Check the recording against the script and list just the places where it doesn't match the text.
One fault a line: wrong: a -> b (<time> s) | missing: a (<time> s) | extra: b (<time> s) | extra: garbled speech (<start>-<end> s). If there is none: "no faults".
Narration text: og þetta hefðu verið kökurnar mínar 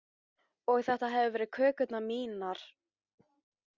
no faults